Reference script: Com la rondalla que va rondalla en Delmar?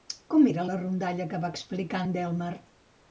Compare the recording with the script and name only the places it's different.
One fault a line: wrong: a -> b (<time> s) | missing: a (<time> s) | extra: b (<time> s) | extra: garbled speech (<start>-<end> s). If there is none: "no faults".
extra: era (0.5 s)
wrong: rondalla -> explicar (1.6 s)